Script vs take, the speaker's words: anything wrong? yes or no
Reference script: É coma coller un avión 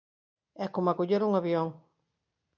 no